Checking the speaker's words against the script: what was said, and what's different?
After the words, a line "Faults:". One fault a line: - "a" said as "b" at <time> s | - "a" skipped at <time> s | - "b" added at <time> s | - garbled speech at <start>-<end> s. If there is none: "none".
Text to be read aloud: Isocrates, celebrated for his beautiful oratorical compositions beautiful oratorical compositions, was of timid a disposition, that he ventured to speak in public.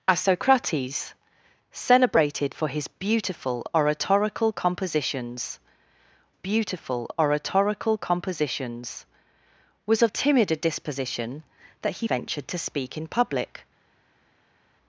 Isocrates, celebrated for his beautiful oratorical compositions beautiful oratorical compositions, was of timid a disposition, that he ventured to speak in public.
Faults:
none